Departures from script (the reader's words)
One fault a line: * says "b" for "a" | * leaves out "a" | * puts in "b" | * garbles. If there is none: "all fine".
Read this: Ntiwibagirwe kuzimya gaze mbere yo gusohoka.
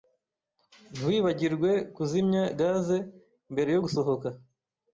all fine